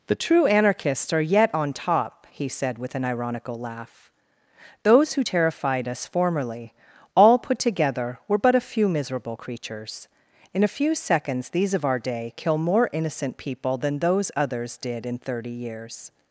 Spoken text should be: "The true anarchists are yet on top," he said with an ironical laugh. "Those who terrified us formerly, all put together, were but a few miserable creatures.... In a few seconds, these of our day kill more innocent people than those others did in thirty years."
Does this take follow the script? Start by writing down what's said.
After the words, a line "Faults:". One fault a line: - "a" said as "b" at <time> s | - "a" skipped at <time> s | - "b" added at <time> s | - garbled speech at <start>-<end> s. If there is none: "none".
"The true anarchists are yet on top," he said with an ironical laugh. "Those who terrified us formerly, all put together, were but a few miserable creatures.... In a few seconds, these of our day kill more innocent people than those others did in thirty years."
Faults:
none